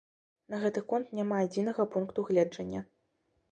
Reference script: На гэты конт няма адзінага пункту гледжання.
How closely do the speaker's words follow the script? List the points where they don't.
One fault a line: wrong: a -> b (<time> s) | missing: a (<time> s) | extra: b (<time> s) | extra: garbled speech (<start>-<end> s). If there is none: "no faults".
no faults